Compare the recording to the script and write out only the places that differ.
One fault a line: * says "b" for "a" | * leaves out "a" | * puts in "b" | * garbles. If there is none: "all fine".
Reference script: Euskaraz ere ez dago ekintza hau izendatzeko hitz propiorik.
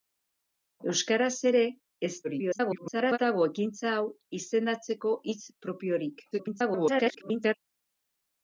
* garbles
* garbles